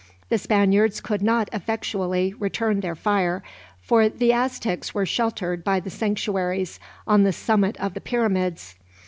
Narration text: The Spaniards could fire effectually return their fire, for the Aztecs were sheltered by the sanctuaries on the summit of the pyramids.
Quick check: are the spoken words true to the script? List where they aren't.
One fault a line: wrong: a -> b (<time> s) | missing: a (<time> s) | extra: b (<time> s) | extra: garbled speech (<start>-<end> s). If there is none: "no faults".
wrong: fire -> not (1.2 s)